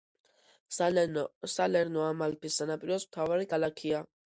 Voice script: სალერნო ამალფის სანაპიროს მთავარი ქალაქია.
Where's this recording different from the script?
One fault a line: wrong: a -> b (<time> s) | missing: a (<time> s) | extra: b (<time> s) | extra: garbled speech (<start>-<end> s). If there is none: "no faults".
no faults